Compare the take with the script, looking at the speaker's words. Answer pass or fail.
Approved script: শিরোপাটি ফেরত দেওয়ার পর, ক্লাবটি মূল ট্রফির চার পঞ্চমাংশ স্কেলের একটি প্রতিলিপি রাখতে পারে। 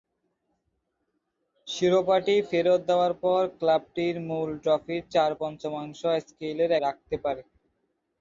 fail